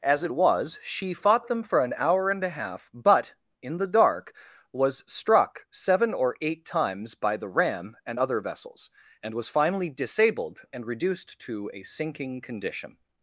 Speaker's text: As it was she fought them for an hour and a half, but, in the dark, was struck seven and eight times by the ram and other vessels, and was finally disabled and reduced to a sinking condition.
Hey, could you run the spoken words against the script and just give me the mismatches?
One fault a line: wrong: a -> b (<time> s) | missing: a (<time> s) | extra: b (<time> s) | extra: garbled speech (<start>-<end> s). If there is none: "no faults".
wrong: and -> or (6.1 s)